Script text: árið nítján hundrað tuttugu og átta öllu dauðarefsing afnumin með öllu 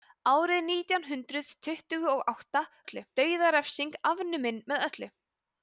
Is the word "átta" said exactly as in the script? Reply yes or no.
yes